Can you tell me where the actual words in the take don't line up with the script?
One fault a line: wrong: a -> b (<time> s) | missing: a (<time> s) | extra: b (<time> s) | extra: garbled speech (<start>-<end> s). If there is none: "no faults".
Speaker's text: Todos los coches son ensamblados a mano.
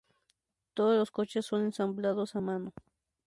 no faults